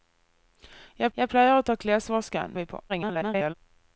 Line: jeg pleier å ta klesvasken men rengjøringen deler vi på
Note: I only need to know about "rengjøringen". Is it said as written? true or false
false